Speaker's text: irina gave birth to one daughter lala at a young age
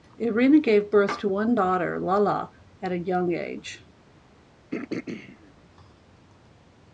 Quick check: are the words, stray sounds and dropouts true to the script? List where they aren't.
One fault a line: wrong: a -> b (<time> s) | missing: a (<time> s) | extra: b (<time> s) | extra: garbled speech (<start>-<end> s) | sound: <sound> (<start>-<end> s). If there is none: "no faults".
sound: throat clearing (4.7-5.5 s)